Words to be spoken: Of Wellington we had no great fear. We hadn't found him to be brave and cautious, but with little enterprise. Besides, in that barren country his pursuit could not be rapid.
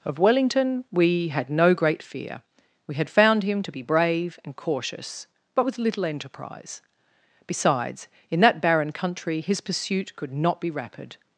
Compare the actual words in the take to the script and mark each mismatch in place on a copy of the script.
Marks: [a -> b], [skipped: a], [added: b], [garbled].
Of Wellington we had no great fear. We [hadn't -> had] found him to be brave and cautious, but with little enterprise. Besides, in that barren country his pursuit could not be rapid.